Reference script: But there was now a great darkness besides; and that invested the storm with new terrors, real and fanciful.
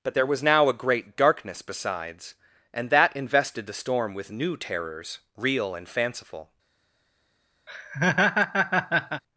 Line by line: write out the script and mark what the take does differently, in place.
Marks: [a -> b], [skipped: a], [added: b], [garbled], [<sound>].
But there was now a great darkness besides; and that invested the storm with new terrors, real and fanciful. [laugh]